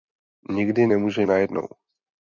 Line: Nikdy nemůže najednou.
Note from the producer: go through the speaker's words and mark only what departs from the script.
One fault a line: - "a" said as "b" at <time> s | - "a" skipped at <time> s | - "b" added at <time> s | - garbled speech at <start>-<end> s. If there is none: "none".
none